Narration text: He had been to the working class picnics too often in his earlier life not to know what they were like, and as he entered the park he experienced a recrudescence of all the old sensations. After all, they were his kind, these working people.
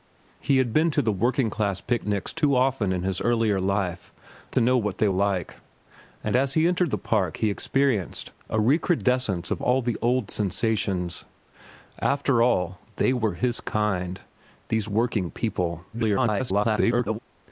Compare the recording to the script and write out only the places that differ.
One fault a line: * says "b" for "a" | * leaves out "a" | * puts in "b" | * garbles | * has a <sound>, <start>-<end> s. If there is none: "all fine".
* leaves out "not"
* leaves out "were"
* garbles